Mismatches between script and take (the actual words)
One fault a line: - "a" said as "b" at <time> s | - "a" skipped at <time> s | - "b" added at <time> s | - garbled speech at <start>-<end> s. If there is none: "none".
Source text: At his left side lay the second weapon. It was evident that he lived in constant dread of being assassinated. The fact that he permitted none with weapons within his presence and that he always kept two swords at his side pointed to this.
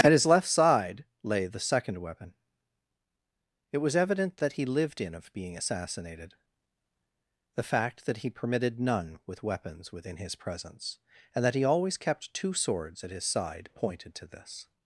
- "constant dread" skipped at 5.1 s